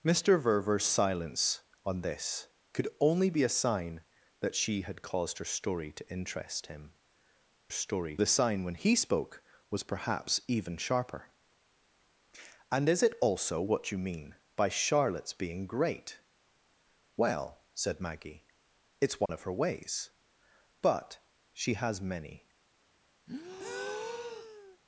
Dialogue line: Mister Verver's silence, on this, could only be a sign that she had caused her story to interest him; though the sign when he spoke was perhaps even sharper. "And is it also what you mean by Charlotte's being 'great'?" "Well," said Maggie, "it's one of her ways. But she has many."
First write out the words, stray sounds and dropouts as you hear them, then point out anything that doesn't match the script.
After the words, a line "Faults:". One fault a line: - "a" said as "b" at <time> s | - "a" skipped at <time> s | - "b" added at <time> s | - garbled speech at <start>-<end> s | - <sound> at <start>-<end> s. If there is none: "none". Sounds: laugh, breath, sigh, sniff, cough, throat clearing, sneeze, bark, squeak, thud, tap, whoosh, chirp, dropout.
Mister Verver's silence, on this, could only be a sign that she had caused her story to interest him; story the sign when he spoke was perhaps even sharper. "And is it also what you mean by Charlotte's being 'great'?" "Well," said Maggie, "it's one of her ways. But she has many."
Faults:
- "though" said as "story" at 7.7 s
- dropout at 19.3-19.3 s
- breath at 23.3-24.8 s